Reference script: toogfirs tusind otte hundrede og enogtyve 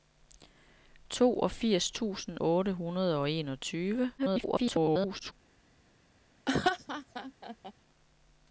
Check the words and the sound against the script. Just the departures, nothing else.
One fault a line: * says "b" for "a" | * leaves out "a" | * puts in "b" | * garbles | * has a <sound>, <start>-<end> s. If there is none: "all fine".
* garbles
* has a laugh, 6.5-7.7 s